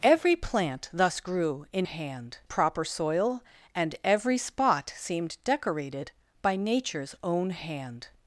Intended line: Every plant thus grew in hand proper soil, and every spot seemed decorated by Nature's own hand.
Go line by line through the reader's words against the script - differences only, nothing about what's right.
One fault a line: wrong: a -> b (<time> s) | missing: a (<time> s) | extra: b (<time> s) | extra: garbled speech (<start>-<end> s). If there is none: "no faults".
no faults